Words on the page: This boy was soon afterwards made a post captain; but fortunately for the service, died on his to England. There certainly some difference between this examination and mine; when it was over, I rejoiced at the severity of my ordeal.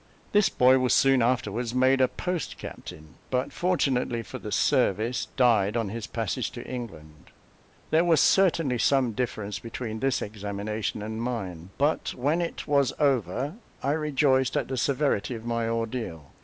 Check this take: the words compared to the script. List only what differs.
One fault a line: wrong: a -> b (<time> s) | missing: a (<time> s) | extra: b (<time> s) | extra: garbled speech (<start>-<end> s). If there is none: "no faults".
extra: passage (6.1 s)
extra: was (8.0 s)
extra: but (11.8 s)